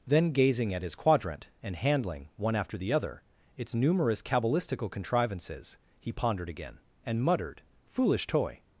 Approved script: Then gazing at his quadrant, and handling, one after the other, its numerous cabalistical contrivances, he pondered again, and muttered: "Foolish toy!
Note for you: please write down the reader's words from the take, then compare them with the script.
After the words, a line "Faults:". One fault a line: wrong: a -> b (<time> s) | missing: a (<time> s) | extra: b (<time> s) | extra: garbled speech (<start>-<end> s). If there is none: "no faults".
Then gazing at his quadrant, and handling, one after the other, its numerous cabalistical contrivances, he pondered again, and muttered: "Foolish toy!
Faults:
no faults